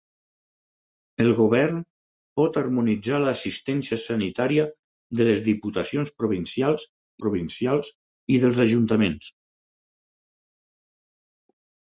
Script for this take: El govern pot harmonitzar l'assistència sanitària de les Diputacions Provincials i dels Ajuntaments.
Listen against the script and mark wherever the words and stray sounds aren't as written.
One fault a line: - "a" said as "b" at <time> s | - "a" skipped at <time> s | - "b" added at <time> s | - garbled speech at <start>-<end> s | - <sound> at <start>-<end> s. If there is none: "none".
- "Provincials" added at 7.3 s